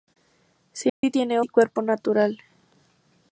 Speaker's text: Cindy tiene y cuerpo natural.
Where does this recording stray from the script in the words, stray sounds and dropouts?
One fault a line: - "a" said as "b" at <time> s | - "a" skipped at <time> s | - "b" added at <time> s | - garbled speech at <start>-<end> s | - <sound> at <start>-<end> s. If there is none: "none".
- dropout at 0.9-1.0 s